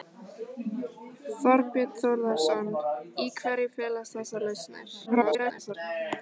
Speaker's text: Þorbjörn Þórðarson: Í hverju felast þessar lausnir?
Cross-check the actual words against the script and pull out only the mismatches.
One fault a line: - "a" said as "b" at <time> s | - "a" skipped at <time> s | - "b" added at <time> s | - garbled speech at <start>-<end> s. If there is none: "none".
- garbled speech at 5.1-5.7 s